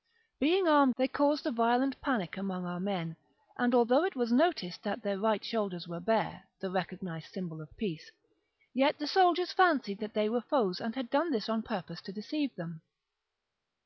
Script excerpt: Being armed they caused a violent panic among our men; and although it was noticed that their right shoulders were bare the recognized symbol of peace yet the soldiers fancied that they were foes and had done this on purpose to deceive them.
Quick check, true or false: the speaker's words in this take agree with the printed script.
true